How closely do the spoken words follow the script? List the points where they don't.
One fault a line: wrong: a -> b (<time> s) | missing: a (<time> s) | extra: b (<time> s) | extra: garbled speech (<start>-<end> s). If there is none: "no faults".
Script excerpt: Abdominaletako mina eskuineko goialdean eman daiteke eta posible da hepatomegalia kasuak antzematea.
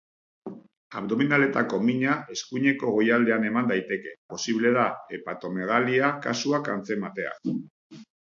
missing: eta (4.2 s)